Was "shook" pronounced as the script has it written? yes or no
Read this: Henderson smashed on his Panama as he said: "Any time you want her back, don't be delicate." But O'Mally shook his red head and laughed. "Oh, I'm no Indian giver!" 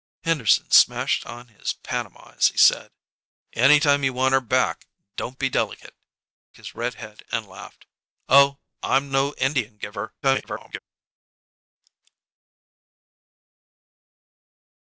no